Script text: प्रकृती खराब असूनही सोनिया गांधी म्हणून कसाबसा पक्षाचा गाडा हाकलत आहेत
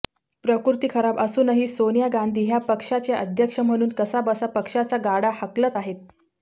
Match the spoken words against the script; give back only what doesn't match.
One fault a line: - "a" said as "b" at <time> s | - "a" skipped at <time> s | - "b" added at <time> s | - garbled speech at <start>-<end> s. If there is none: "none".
- "ह्या पक्षाच्या अध्यक्ष" added at 2.4 s